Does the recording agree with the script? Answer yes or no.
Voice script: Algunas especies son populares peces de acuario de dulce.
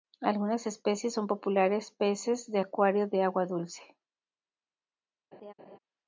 no